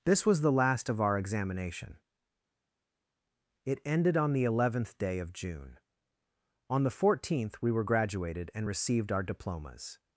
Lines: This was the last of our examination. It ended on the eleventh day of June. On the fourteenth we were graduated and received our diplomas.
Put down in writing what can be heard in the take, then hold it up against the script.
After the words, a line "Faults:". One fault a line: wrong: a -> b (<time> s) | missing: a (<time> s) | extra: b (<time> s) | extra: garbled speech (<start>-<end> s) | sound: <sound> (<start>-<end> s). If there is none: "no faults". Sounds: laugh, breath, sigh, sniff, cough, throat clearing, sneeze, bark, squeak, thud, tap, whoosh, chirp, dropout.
This was the last of our examination. It ended on the eleventh day of June. On the fourteenth we were graduated and received our diplomas.
Faults:
no faults